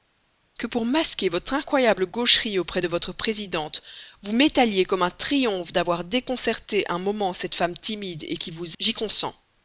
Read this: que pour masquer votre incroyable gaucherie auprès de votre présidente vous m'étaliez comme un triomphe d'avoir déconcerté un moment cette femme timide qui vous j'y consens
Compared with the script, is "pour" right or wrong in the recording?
right